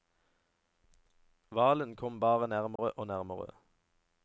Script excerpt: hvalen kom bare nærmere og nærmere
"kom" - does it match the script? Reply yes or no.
yes